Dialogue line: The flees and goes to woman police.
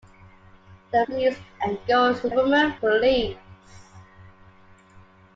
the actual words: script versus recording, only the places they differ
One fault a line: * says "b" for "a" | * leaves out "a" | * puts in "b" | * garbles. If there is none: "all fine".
all fine